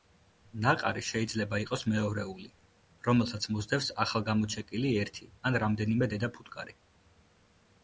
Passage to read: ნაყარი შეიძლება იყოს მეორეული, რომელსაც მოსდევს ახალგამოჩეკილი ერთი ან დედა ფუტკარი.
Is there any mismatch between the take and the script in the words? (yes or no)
yes